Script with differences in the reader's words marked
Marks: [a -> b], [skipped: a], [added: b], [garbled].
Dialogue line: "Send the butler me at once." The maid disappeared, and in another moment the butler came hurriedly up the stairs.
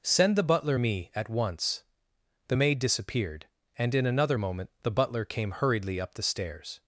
"Send the butler me at once." The maid disappeared, and in another moment the butler came hurriedly up the stairs.